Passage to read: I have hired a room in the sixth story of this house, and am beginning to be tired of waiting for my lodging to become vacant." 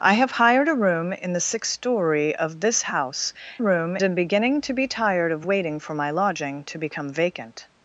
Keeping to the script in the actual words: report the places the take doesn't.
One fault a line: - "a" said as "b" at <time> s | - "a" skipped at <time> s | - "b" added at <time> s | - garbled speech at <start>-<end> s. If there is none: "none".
- "and" said as "room" at 3.6 s